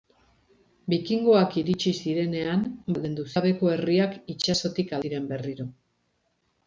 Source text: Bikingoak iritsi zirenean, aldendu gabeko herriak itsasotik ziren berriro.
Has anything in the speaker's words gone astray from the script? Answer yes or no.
no